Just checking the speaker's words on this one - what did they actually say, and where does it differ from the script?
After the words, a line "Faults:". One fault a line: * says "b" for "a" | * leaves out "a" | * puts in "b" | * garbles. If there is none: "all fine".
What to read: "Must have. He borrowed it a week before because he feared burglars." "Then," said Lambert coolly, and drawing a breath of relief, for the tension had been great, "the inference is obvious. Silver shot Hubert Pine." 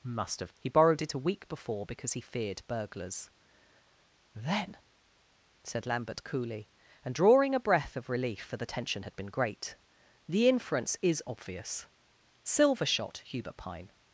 "Must have. He borrowed it a week before because he feared burglars." "Then," said Lambert coolly, and drawing a breath of relief, for the tension had been great, "the inference is obvious. Silver shot Hubert Pine."
Faults:
all fine